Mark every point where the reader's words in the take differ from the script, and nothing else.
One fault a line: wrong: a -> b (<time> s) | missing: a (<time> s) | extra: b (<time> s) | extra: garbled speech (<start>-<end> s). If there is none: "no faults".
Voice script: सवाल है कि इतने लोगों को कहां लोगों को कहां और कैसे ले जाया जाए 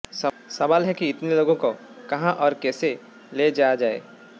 missing: लोगों को कहां (2.3 s)